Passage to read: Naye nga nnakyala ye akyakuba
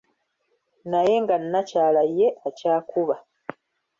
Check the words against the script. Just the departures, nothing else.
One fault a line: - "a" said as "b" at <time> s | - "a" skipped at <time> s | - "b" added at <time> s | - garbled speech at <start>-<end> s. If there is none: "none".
none